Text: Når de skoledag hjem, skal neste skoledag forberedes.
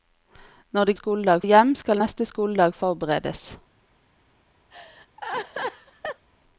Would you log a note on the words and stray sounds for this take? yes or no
yes